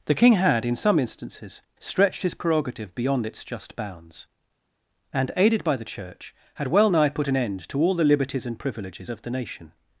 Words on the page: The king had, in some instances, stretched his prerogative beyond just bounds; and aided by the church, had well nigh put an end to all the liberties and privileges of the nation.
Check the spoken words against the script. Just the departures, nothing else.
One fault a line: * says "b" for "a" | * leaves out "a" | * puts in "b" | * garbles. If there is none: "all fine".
* puts in "its"